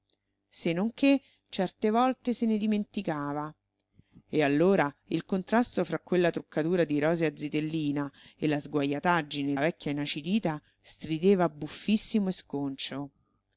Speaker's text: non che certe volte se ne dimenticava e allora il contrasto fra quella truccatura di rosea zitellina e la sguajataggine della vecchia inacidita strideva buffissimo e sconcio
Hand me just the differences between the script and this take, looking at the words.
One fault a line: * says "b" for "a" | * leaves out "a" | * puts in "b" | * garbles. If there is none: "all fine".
* leaves out "della"